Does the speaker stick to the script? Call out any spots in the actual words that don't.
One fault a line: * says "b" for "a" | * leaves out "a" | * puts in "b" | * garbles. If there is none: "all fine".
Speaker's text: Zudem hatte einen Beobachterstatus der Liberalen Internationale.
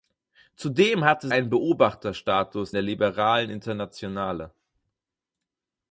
all fine